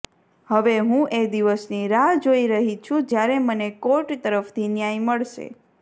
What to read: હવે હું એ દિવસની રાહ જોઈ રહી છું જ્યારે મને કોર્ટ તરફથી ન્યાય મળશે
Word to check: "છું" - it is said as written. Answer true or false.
true